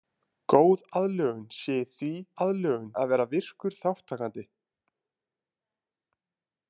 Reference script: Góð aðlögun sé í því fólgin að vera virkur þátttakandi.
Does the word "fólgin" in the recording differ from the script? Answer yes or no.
yes